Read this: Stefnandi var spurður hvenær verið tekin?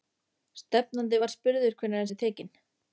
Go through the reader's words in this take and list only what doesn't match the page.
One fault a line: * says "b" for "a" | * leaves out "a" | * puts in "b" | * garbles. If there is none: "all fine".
all fine